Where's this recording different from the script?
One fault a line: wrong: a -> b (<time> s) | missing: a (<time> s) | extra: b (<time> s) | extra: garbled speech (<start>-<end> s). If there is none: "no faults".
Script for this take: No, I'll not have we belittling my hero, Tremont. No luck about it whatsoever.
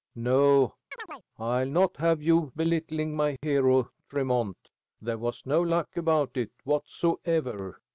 wrong: we -> you (2.2 s)
extra: There was (5.0 s)